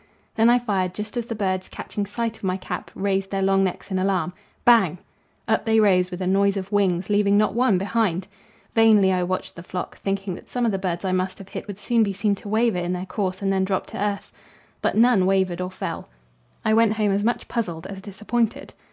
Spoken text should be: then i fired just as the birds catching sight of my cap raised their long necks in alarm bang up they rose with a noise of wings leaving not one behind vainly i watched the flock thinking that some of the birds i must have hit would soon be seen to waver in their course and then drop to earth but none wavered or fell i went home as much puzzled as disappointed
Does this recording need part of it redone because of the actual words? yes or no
no